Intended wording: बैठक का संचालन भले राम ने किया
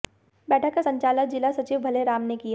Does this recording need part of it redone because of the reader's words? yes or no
yes